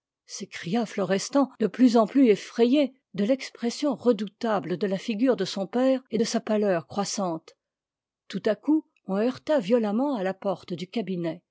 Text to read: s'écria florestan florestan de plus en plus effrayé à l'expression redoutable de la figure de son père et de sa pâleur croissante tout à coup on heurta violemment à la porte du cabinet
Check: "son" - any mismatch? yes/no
no